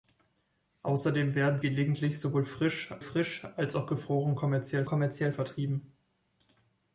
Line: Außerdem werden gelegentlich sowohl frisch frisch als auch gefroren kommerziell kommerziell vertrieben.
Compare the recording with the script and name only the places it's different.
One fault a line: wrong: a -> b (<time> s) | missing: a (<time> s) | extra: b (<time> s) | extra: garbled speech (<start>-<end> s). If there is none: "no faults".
no faults